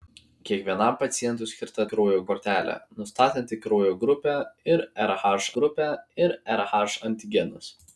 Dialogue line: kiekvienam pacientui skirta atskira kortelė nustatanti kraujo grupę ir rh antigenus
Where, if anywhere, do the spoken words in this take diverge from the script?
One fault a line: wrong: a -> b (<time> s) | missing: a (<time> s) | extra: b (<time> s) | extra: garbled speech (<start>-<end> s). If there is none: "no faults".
wrong: atskira -> kraujo (1.9 s)
extra: grupę ir rh (5.6 s)